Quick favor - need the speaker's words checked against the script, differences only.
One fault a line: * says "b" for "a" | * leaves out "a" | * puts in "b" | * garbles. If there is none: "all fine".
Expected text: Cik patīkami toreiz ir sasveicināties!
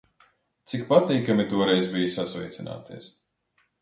* says "bija" for "ir"